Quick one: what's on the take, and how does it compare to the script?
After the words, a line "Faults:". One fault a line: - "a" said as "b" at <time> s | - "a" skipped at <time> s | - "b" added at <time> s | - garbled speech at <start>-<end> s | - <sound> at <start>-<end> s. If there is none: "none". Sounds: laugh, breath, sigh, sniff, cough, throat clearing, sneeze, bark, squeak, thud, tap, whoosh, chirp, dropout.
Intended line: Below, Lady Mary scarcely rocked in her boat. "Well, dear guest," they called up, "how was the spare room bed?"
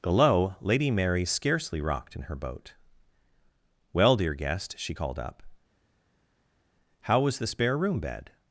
Below, Lady Mary scarcely rocked in her boat. "Well, dear guest," she called up, "how was the spare room bed?"
Faults:
- "they" said as "she" at 4.8 s